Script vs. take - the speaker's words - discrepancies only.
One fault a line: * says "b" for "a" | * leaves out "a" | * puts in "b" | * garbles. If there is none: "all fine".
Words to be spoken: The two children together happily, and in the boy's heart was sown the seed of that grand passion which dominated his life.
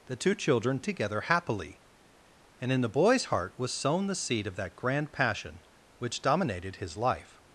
all fine